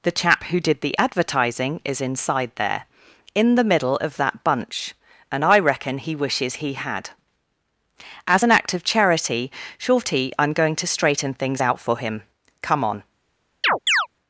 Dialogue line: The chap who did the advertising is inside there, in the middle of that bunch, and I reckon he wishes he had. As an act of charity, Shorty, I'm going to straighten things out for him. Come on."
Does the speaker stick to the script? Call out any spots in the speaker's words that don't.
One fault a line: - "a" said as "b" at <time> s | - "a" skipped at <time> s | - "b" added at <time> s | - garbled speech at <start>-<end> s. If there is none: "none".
none